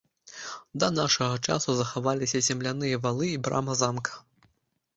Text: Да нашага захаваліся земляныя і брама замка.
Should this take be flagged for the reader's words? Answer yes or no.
yes